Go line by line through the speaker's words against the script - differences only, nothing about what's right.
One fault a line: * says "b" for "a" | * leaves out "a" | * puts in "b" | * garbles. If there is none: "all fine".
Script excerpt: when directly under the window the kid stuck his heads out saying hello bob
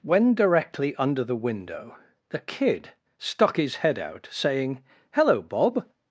* says "head" for "heads"